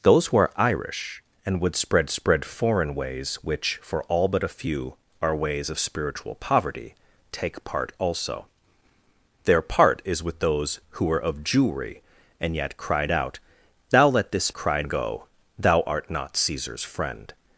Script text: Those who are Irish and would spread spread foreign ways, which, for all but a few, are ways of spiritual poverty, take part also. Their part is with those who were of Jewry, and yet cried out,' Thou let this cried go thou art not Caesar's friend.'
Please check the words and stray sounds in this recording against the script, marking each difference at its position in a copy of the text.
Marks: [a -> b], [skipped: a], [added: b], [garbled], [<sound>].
Those who are Irish and would spread spread foreign ways, which, for all but a few, are ways of spiritual poverty, take part also. Their part is with those who were of Jewry, and yet cried out,' Thou let this cried go thou art not Caesar's friend.'